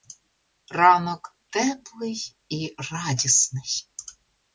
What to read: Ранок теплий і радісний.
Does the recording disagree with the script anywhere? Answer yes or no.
no